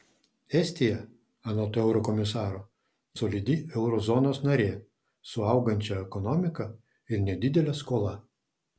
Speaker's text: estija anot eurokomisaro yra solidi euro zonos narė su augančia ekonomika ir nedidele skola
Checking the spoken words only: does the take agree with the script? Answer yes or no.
no